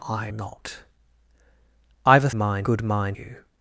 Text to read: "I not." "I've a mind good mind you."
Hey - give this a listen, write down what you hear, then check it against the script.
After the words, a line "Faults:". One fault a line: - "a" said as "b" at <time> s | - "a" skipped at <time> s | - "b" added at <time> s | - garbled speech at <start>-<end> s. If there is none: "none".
"I not." "I've a mind good mind you."
Faults:
none